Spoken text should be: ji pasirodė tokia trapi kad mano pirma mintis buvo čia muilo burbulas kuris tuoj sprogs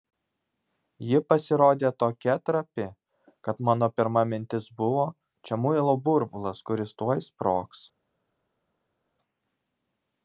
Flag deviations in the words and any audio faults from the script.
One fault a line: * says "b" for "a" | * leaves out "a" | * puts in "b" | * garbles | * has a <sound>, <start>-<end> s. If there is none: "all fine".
all fine